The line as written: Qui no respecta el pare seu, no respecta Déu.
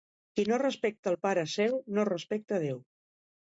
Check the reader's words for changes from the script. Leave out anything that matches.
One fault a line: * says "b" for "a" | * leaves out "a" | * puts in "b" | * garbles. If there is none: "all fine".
all fine